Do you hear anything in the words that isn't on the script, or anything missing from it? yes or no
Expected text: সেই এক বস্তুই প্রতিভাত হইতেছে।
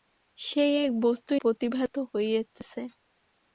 no